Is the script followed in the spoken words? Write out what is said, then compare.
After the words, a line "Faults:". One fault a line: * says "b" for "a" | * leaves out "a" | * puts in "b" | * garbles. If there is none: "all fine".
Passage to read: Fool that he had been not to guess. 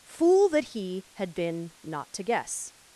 Fool that he had been not to guess.
Faults:
all fine